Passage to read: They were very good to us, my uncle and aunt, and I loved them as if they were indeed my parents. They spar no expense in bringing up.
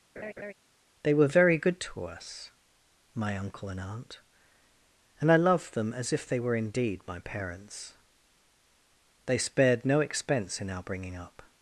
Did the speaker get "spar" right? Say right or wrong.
wrong